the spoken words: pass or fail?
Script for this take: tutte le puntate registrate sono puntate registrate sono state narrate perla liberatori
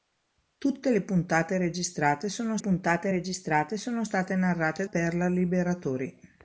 pass